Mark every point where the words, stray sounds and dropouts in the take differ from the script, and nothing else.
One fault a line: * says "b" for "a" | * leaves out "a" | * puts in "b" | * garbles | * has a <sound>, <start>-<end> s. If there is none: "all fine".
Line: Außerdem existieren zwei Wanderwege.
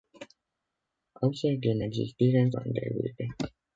* leaves out "zwei"